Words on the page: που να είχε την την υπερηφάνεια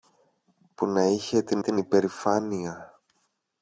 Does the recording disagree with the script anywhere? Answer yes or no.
no